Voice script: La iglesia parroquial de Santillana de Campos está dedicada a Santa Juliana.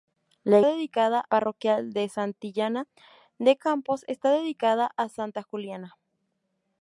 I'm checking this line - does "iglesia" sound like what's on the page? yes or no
no